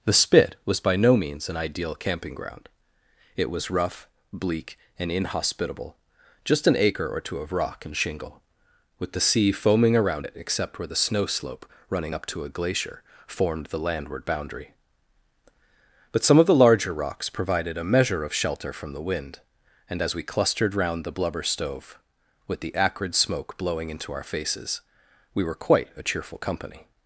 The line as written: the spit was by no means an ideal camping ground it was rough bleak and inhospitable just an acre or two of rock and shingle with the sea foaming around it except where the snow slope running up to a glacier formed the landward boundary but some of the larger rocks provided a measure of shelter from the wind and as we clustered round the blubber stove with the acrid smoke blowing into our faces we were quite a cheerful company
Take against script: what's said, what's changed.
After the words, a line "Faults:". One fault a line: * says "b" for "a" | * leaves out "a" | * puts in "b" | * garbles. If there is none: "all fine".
the spit was by no means an ideal camping ground it was rough bleak and inhospitable just an acre or two of rock and shingle with the sea foaming around it except where the snow slope running up to a glacier formed the landward boundary but some of the larger rocks provided a measure of shelter from the wind and as we clustered round the blubber stove with the acrid smoke blowing into our faces we were quite a cheerful company
Faults:
all fine